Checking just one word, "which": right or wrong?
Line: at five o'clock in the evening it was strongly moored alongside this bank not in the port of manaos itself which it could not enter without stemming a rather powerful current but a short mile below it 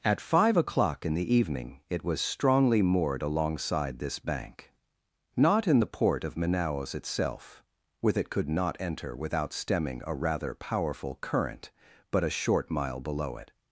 wrong